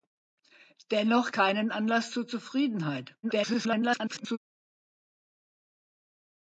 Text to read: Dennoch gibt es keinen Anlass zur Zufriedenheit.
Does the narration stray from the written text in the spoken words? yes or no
yes